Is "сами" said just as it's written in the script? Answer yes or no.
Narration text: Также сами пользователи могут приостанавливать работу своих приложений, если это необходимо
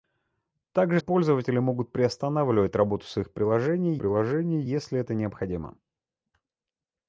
no